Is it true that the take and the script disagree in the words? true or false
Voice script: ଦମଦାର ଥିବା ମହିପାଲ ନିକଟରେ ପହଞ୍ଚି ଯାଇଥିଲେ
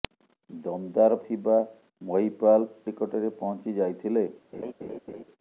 false